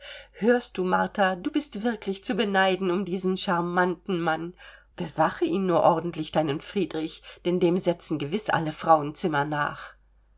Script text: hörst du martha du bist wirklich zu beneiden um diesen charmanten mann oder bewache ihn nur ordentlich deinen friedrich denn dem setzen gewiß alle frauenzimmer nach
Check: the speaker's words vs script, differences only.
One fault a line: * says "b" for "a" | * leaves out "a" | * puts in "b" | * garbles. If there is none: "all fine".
* leaves out "oder"